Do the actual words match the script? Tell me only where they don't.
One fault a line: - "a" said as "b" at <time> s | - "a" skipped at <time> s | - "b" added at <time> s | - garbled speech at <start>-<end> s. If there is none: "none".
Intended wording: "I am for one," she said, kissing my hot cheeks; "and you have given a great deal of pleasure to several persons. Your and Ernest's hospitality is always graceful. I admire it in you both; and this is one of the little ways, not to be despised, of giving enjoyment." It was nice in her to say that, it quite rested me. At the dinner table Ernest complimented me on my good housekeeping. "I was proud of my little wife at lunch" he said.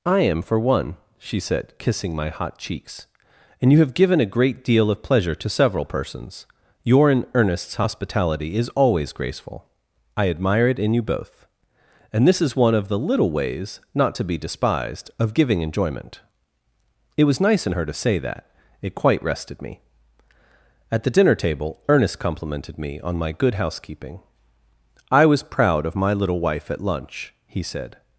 none